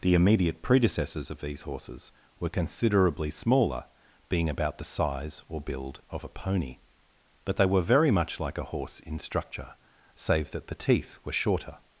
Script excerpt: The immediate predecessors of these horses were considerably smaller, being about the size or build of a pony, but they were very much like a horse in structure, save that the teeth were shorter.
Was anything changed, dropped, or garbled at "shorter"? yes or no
no